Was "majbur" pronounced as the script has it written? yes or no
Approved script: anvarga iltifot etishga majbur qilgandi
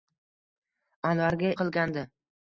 no